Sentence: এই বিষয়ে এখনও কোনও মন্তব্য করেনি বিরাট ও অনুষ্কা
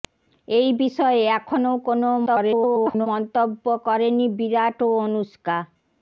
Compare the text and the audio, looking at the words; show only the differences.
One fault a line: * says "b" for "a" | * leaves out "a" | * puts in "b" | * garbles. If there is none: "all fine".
* garbles